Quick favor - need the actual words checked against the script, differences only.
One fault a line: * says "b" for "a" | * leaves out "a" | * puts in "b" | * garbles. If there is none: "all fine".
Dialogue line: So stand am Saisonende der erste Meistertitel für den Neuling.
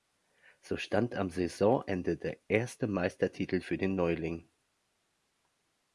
all fine